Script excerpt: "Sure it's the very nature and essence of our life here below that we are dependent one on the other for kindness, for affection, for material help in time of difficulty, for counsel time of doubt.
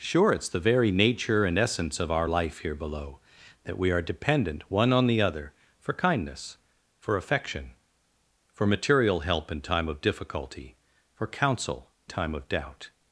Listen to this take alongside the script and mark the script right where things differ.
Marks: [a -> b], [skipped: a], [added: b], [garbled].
"Sure it's the very nature and essence of our life here below that we are dependent one on the other for kindness, for affection, for material help in time of difficulty, for counsel time of doubt.